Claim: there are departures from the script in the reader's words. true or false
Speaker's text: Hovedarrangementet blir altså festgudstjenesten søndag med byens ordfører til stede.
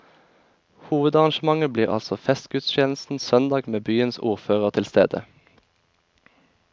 false